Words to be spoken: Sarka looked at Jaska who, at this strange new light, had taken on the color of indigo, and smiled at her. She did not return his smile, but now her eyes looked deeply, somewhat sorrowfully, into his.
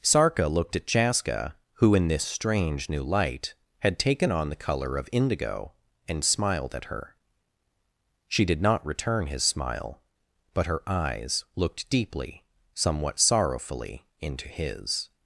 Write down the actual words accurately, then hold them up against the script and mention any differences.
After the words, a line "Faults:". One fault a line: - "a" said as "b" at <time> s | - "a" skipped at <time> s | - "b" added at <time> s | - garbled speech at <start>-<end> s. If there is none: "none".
Sarka looked at Jaska who, in this strange new light, had taken on the color of indigo, and smiled at her. She did not return his smile, but her eyes looked deeply, somewhat sorrowfully, into his.
Faults:
- "at" said as "in" at 1.9 s
- "now" skipped at 10.7 s